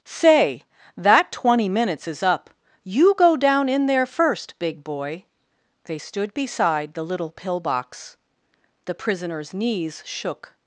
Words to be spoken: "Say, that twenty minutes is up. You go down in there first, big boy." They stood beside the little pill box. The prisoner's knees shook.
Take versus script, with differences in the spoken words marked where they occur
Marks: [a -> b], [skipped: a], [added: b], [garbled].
"Say, that twenty minutes is up. You go down in there first, big boy." They stood beside the little pill box. The prisoner's knees shook.